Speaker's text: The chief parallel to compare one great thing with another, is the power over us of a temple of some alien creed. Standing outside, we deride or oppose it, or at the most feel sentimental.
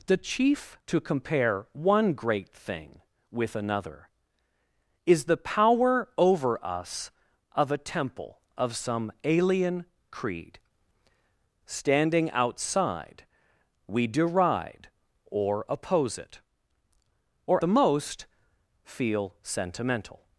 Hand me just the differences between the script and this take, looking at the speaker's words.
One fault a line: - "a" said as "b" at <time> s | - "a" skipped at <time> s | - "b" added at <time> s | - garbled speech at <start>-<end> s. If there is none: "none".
- "parallel" skipped at 0.8 s
- "at" skipped at 17.6 s